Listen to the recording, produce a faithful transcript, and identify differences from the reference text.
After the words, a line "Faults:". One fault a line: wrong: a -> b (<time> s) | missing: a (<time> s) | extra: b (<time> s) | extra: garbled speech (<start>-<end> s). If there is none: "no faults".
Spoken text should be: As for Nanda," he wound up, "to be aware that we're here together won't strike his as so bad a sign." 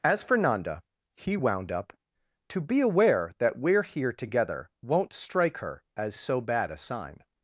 As for Nanda," he wound up, "to be aware that we're here together won't strike her as so bad a sign."
Faults:
wrong: his -> her (5.6 s)